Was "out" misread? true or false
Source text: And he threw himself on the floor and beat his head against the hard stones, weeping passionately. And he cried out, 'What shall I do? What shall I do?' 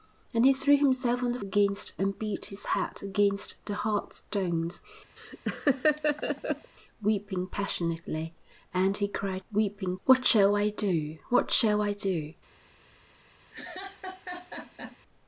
true